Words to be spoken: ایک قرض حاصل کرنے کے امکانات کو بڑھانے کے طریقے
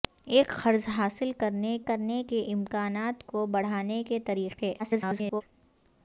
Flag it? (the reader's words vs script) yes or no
yes